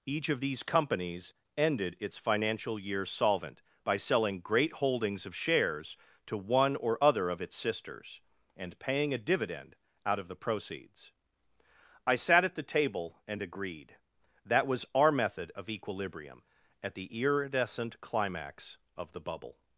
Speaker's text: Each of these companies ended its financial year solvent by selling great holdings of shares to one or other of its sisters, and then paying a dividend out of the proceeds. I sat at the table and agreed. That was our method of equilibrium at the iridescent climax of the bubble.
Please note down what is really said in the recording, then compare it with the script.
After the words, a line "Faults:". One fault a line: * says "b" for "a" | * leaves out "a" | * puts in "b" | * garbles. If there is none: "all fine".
Each of these companies ended its financial year solvent by selling great holdings of shares to one or other of its sisters, and paying a dividend out of the proceeds. I sat at the table and agreed. That was our method of equilibrium at the iridescent climax of the bubble.
Faults:
* leaves out "then"